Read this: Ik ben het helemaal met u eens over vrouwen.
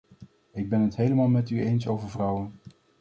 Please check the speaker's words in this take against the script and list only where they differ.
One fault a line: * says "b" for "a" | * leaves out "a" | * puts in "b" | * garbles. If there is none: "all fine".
all fine